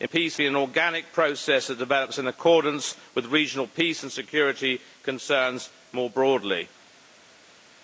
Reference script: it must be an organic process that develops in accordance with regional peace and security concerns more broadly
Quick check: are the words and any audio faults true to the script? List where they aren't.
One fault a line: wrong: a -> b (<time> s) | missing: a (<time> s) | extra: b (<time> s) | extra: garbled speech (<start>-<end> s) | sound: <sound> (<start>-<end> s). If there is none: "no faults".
wrong: must -> peace (0.0 s)